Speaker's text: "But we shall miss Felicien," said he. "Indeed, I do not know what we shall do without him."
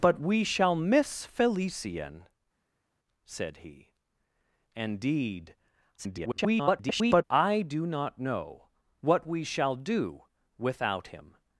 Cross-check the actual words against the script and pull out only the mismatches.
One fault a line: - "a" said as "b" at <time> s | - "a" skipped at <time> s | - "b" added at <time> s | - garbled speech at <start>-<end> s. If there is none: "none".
- garbled speech at 6.0-7.2 s